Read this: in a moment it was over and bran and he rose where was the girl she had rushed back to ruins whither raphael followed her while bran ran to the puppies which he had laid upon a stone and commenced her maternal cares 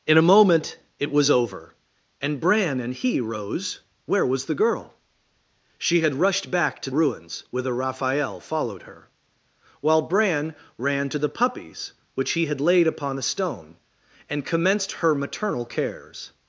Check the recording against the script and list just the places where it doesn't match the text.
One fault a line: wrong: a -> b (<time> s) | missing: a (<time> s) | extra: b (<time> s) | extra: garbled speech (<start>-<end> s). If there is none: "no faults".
no faults